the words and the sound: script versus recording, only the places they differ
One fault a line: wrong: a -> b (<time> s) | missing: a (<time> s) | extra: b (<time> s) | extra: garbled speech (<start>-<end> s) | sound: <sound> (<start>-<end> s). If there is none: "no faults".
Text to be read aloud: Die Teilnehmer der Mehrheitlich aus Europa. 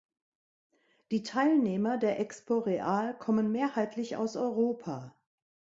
extra: Expo Real kommen (2.2 s)